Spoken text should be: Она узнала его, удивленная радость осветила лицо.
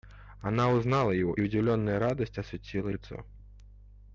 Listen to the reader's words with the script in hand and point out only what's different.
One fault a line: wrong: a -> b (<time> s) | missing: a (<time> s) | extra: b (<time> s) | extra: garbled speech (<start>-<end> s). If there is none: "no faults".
no faults